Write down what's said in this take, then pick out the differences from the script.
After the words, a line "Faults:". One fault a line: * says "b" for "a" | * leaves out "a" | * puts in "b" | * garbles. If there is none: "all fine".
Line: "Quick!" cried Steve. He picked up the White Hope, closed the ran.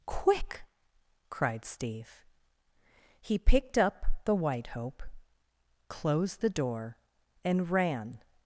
"Quick!" cried Steve. He picked up the White Hope, closed the door, and ran.
Faults:
* puts in "door and"